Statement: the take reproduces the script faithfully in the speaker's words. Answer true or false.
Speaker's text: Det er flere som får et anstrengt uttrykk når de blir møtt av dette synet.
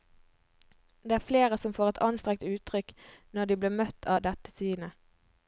true